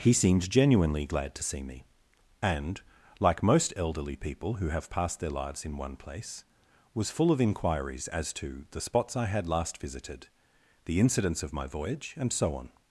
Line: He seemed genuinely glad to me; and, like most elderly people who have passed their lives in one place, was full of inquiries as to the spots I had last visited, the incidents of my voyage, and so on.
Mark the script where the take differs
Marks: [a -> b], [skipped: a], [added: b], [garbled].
He seemed genuinely glad to [added: see] me; and, like most elderly people who have passed their lives in one place, was full of inquiries as to the spots I had last visited, the incidents of my voyage, and so on.